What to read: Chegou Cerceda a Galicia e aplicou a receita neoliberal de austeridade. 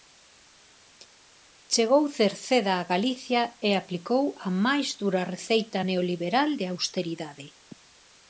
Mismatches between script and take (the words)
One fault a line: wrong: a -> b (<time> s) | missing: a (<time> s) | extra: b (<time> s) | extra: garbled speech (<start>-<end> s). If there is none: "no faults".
extra: máis dura (4.6 s)